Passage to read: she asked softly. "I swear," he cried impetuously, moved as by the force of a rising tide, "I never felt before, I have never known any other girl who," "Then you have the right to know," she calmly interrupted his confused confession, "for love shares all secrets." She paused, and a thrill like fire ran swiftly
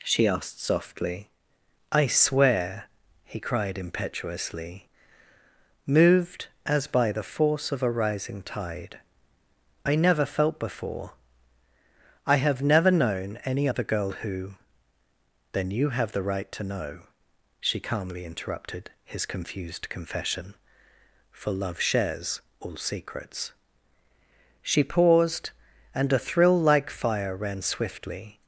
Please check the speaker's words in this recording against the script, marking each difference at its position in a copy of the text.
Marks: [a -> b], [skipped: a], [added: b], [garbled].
she asked softly. "I swear," he cried impetuously, moved as by the force of a rising tide, "I never felt before, I have never known any other girl who," "Then you have the right to know," she calmly interrupted his confused confession, "for love shares all secrets." She paused, and a thrill like fire ran swiftly